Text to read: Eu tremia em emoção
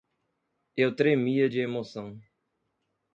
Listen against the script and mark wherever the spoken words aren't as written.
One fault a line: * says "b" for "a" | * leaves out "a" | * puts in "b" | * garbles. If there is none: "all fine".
* says "de" for "em"